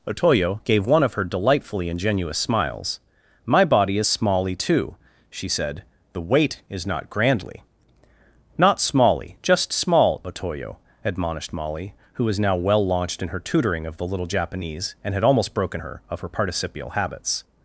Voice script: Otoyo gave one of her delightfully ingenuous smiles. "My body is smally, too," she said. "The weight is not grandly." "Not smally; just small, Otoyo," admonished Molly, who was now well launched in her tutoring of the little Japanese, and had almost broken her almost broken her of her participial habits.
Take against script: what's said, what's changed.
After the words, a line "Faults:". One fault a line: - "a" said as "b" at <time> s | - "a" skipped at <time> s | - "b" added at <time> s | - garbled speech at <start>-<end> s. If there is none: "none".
Otoyo gave one of her delightfully ingenuous smiles. "My body is smally, too," she said. "The weight is not grandly." "Not smally; just small, Otoyo," admonished Molly, who was now well launched in her tutoring of the little Japanese, and had almost broken her of her participial habits.
Faults:
- "almost broken her" skipped at 16.0 s